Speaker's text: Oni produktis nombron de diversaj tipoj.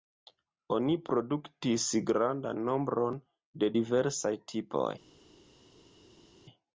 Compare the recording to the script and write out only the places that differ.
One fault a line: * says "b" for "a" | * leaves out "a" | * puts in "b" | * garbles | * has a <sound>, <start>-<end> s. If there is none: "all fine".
* puts in "grandan"